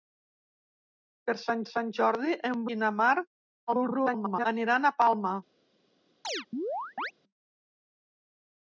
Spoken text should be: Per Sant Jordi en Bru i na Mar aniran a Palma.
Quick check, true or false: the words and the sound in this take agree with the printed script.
false